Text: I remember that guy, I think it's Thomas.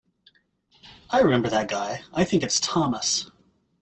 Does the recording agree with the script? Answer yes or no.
yes